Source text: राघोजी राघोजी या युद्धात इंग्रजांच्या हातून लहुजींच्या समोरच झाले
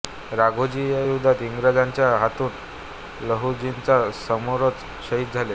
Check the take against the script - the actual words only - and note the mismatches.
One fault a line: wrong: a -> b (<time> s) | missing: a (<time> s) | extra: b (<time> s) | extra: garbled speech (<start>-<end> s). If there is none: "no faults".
missing: राघोजी (0.9 s)
extra: शहीद (5.1 s)